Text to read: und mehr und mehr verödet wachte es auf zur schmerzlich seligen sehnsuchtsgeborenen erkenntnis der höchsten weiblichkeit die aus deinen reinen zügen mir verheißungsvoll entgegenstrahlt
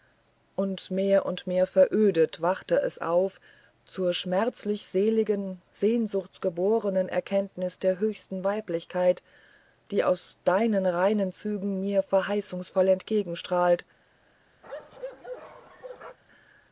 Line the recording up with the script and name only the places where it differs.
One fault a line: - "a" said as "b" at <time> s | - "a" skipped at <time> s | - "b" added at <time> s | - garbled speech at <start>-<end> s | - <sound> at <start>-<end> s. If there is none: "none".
- bark at 14.6-16.2 s